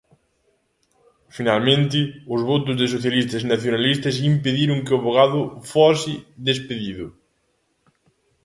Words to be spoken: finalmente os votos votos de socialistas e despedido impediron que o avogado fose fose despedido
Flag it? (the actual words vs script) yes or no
yes